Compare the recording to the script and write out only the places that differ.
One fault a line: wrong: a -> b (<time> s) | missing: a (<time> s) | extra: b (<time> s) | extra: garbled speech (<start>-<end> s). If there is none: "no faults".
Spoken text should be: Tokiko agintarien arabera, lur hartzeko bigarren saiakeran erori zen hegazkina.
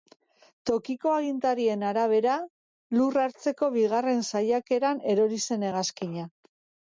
no faults